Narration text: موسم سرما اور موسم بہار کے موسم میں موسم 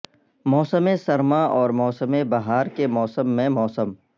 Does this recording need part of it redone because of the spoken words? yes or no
no